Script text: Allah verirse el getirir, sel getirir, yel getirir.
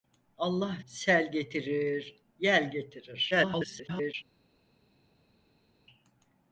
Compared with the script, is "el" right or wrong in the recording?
wrong